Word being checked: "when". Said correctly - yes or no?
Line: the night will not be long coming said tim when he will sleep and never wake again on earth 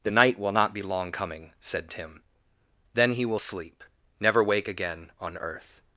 no